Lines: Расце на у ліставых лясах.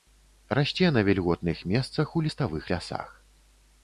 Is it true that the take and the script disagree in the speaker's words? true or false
true